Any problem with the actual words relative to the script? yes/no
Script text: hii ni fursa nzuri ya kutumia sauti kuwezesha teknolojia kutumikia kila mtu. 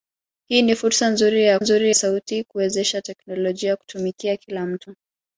yes